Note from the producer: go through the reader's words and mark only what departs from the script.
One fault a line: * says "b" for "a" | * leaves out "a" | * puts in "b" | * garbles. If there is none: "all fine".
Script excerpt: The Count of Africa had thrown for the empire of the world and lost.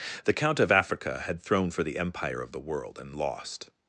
all fine